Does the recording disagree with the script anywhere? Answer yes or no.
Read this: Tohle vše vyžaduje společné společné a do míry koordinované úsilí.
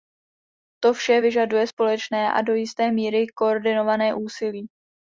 yes